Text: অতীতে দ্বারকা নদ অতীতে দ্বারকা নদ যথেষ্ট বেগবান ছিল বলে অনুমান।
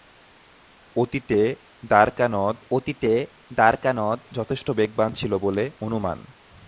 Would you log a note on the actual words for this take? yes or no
no